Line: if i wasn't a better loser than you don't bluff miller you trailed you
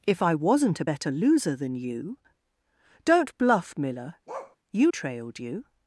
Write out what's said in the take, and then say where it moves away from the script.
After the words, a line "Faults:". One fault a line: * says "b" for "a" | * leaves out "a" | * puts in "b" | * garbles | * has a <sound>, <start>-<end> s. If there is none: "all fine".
if i wasn't a better loser than you don't bluff miller you trailed you
Faults:
* has a bark, 4.3-4.6 s